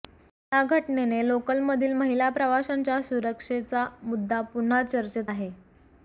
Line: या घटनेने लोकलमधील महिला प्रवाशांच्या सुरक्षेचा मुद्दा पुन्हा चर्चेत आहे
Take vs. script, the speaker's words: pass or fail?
pass